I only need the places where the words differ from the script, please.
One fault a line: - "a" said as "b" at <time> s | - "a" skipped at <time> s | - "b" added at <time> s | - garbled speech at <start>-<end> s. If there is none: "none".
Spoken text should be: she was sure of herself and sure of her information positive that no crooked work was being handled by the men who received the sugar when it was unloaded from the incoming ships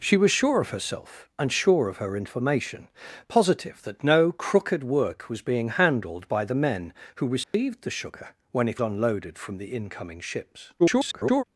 - "was" skipped at 8.8 s
- garbled speech at 10.8-11.4 s